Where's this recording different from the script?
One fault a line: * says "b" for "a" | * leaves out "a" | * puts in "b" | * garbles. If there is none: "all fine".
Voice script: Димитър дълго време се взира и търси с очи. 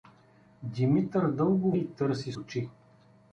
* leaves out "време се взира"
* leaves out "с"